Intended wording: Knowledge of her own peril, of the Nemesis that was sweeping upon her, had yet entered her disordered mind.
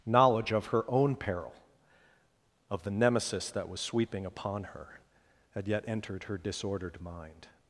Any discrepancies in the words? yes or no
no